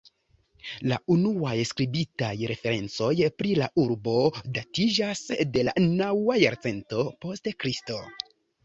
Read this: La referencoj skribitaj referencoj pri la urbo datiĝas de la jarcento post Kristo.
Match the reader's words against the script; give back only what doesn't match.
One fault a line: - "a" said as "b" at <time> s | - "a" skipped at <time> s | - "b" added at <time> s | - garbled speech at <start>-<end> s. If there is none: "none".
- "referencoj" said as "unuaj" at 1.1 s
- "naŭa" added at 5.9 s